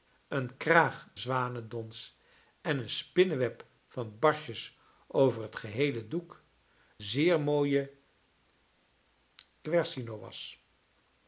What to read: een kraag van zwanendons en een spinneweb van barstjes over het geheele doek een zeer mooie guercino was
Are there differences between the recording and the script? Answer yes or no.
yes